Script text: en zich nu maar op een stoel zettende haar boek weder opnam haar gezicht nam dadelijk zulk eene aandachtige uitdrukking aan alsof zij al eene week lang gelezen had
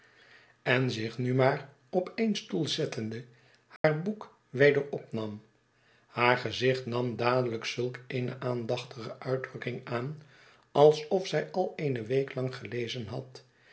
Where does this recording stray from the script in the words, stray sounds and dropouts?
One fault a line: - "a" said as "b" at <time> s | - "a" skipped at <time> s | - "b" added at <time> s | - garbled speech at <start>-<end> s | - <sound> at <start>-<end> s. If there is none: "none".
- dropout at 3.8-3.8 s